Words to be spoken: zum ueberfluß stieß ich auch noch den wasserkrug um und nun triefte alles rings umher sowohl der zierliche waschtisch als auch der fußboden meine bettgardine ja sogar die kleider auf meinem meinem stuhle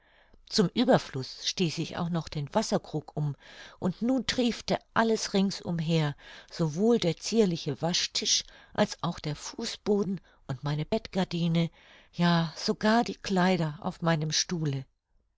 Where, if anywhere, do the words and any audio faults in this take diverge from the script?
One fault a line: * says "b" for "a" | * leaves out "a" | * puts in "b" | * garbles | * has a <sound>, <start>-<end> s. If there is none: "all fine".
* puts in "und"
* leaves out "meinem"